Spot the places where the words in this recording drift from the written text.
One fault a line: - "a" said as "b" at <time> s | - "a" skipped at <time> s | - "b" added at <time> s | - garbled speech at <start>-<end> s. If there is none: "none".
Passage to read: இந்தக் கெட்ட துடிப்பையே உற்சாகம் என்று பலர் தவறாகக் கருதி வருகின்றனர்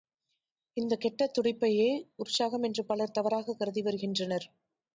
none